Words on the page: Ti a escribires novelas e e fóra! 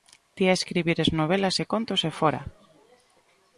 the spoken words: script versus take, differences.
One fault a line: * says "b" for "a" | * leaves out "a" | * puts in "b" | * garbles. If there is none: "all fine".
* puts in "contos"